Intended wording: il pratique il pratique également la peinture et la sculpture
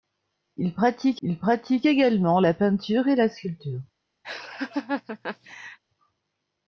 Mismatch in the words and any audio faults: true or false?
true